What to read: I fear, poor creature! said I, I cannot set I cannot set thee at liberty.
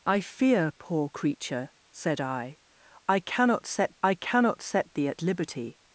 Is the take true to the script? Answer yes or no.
yes